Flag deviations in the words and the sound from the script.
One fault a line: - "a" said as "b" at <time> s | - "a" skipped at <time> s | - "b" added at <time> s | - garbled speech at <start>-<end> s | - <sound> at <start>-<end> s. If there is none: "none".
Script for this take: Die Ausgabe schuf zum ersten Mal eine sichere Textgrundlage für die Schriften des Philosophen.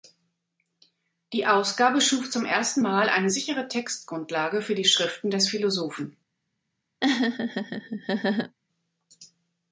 - laugh at 7.0-8.6 s